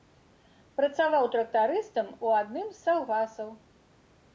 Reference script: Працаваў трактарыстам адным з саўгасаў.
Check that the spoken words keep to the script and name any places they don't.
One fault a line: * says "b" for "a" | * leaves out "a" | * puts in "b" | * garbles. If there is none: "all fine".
* puts in "у"